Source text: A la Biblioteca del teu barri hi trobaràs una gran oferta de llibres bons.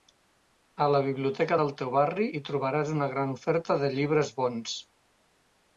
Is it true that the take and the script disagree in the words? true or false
false